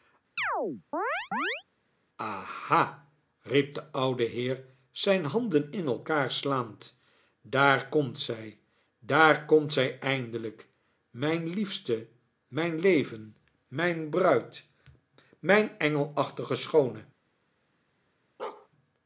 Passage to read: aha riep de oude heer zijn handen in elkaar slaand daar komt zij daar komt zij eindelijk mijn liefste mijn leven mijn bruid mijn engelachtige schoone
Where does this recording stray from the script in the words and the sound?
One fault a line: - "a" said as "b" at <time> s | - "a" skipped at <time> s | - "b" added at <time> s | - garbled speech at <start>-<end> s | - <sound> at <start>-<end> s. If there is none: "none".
- chirp at 0.4-1.6 s
- bark at 18.4-18.7 s